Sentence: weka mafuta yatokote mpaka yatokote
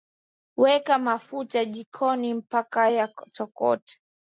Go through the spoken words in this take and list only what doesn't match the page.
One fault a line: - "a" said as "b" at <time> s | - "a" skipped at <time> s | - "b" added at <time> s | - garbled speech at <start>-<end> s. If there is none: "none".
- "yatokote" said as "jikoni" at 1.6 s